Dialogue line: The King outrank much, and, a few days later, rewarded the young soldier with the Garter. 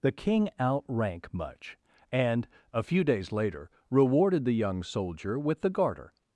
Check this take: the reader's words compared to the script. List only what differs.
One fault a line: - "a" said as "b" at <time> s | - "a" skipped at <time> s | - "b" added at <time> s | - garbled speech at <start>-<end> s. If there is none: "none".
none